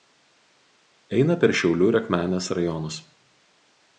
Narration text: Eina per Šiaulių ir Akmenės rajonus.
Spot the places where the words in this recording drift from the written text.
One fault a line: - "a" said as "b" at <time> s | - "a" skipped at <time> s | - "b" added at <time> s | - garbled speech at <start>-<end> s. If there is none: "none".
none